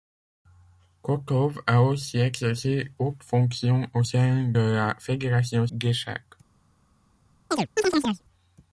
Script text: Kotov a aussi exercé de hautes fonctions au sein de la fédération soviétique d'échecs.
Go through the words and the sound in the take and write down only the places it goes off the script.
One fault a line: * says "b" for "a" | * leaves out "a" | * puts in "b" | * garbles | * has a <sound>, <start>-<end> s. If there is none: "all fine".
* leaves out "de"
* leaves out "de"
* leaves out "soviétique"
* has a chirp, 7.5-8.2 s